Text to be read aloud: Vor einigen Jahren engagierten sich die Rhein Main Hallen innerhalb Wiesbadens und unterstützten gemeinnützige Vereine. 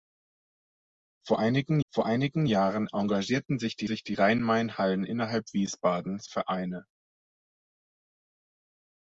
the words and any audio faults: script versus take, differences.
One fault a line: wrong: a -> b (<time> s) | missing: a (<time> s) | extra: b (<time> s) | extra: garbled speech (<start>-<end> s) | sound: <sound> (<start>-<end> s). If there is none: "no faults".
extra: vor einigen (1.9 s)
extra: sich die (3.9 s)
missing: und unterstützten gemeinnützige (6.3 s)